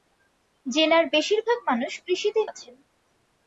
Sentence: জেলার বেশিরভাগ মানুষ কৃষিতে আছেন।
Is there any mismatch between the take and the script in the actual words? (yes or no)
no